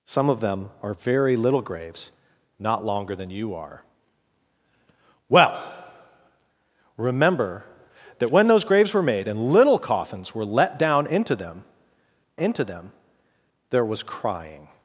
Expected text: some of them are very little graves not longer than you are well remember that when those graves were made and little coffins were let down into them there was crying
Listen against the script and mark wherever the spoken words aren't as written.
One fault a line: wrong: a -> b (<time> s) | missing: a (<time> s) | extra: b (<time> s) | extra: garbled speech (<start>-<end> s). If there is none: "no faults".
extra: into them (12.4 s)